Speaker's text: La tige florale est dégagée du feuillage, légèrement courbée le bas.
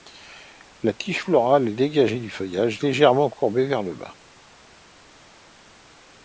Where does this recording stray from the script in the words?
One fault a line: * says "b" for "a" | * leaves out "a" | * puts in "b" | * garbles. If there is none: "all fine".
* puts in "vers"